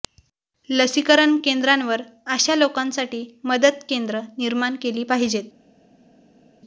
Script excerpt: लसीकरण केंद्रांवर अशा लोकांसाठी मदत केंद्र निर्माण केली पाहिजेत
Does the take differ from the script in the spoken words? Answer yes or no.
no